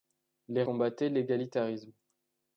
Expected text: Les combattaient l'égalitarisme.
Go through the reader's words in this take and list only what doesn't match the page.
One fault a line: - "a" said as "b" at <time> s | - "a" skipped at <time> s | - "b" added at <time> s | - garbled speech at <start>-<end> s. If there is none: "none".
none